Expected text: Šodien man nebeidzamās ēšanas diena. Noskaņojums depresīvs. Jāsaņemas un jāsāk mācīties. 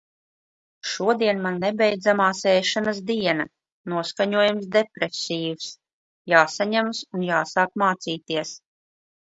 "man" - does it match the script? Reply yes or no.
yes